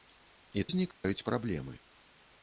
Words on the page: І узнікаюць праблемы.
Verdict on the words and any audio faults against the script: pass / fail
fail